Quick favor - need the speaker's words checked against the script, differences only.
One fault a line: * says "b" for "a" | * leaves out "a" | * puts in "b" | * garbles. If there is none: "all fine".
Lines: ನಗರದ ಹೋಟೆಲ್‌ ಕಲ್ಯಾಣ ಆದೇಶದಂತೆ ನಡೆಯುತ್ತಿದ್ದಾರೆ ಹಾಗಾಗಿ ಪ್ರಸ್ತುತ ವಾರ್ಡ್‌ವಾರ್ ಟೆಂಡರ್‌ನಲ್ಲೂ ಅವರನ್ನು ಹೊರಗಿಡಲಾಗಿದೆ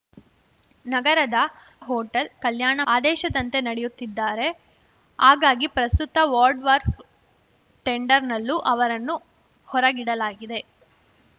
all fine